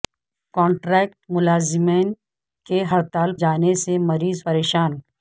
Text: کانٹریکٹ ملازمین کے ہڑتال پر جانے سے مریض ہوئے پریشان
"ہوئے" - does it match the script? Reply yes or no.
no